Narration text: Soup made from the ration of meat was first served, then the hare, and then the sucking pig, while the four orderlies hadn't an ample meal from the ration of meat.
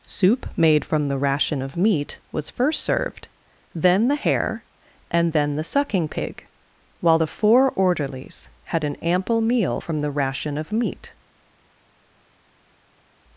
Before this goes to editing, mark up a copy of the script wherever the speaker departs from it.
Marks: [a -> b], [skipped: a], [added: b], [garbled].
Soup made from the ration of meat was first served, then the hare, and then the sucking pig, while the four orderlies [hadn't -> had] an ample meal from the ration of meat.